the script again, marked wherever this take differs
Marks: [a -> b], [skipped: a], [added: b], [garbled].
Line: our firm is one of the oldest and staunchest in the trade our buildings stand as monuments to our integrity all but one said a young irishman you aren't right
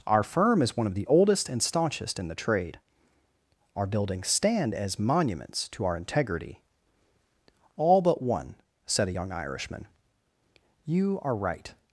our firm is one of the oldest and staunchest in the trade our buildings stand as monuments to our integrity all but one said a young irishman you [aren't -> are] right